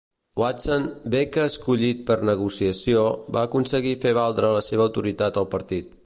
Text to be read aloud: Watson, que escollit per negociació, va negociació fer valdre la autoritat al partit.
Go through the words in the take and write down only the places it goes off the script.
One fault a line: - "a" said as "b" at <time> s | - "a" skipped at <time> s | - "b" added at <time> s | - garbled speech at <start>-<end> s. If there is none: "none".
- "bé" added at 1.1 s
- "negociació" said as "aconseguir" at 3.5 s
- "seva" added at 4.6 s